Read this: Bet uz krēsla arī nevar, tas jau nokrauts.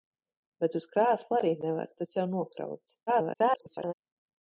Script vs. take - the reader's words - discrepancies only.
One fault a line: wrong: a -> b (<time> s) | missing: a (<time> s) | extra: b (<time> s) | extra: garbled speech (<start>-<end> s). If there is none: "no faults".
extra: garbled speech (3.1-3.9 s)